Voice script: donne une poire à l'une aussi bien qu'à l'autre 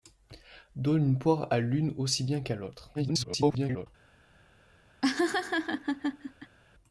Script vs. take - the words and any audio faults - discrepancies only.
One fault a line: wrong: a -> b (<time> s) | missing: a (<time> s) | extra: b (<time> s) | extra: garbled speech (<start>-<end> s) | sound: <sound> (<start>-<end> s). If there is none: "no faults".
extra: garbled speech (2.9-3.9 s)
sound: laugh (5.0-6.6 s)